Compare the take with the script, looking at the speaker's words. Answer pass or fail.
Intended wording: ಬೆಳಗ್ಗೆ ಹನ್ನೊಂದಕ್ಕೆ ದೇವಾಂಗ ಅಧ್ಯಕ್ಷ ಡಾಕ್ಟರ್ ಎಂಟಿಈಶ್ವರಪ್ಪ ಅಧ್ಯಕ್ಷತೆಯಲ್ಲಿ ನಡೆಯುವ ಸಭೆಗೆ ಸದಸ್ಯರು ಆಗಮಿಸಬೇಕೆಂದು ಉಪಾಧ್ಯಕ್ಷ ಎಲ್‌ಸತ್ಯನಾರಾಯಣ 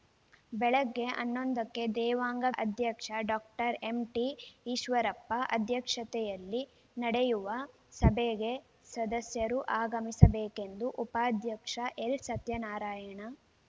pass